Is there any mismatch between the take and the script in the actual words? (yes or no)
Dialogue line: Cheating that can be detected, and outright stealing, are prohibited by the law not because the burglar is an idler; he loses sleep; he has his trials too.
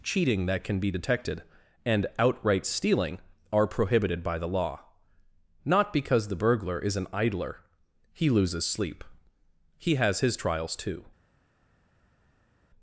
no